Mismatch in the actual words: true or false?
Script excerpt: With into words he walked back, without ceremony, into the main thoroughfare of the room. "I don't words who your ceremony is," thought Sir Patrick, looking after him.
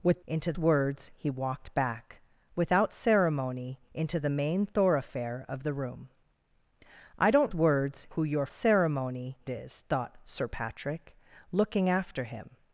false